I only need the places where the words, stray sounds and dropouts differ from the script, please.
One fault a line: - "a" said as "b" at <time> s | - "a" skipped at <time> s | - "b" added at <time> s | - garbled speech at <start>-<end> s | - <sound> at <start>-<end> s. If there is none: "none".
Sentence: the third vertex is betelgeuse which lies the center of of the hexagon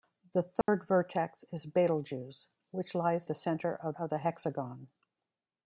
- dropout at 0.6-0.7 s